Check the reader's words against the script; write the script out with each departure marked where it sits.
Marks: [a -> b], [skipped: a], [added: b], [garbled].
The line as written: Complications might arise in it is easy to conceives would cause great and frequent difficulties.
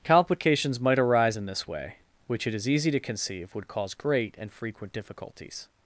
Complications might arise in [added: this way which] it is easy to [conceives -> conceive] would cause great and frequent difficulties.